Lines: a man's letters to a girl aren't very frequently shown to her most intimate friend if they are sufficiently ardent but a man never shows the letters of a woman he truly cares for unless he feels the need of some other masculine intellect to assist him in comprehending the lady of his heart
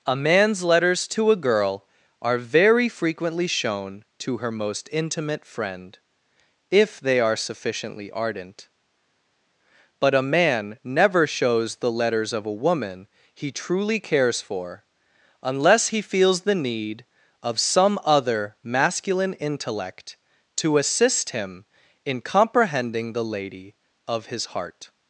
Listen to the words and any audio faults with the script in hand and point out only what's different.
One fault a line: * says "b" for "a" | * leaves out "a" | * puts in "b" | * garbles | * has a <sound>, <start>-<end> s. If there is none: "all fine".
* says "are" for "aren't"